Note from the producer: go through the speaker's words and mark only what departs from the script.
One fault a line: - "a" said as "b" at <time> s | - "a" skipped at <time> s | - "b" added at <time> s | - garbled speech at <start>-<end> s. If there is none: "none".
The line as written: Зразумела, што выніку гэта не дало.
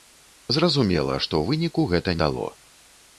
- "не" skipped at 2.2 s